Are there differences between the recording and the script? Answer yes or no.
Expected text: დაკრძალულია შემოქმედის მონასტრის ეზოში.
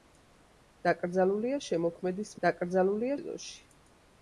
yes